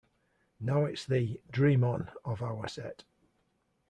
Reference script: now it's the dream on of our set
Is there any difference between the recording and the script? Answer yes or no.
no